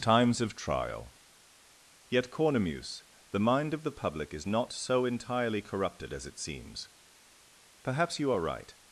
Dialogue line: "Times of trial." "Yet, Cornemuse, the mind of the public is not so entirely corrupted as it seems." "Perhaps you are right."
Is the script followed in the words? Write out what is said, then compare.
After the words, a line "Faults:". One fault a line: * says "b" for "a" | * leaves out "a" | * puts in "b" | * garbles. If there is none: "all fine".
"Times of trial." "Yet, Cornemuse, the mind of the public is not so entirely corrupted as it seems." "Perhaps you are right."
Faults:
all fine